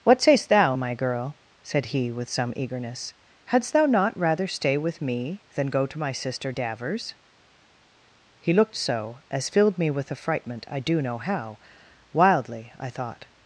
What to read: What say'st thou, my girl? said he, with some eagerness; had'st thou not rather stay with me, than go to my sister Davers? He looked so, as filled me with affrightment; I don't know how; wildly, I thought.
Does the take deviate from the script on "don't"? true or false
true